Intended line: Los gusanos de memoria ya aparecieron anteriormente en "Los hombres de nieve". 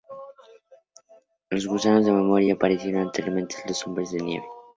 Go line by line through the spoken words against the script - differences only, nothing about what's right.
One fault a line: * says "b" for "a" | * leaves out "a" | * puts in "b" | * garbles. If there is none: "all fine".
all fine